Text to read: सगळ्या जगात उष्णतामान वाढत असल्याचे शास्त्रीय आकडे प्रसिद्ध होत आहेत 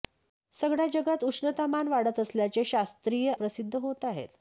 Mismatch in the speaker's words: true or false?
true